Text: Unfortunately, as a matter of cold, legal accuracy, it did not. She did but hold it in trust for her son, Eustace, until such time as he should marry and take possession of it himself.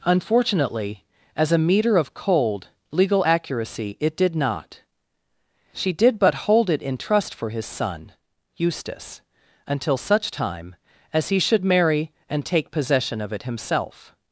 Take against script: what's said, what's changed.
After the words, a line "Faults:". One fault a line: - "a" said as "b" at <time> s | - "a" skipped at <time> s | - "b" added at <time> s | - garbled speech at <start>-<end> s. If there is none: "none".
Unfortunately, as a meter of cold, legal accuracy, it did not. She did but hold it in trust for his son, Eustace, until such time as he should marry and take possession of it himself.
Faults:
- "matter" said as "meter" at 1.6 s
- "her" said as "his" at 7.5 s